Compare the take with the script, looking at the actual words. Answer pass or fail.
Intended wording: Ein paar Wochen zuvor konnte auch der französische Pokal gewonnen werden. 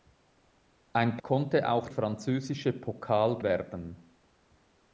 fail